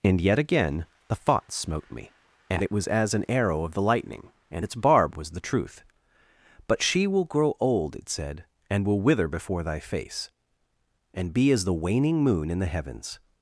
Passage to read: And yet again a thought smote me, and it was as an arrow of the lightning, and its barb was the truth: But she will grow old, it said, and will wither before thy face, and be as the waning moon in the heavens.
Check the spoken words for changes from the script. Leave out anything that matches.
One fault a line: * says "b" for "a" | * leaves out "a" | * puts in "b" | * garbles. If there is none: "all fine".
* says "the" for "a"